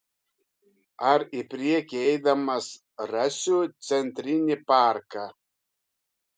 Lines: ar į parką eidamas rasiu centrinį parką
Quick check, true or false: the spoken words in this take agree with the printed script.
false